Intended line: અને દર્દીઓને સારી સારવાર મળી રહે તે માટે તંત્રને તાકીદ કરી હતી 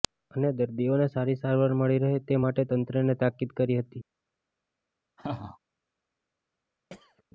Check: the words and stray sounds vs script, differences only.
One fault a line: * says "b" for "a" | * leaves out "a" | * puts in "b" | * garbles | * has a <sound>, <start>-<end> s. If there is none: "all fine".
* has a laugh, 5.2-5.6 s
* has a throat clearing, 6.9-7.2 s